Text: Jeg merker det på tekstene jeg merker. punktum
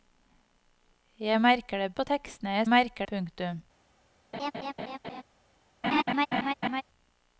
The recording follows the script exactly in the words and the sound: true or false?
false